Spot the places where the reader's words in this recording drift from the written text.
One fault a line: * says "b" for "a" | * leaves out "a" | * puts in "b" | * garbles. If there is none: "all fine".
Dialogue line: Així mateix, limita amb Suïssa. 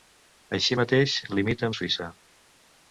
all fine